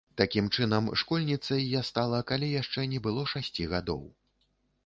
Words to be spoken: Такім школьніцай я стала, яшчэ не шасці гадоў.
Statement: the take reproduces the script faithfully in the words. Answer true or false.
false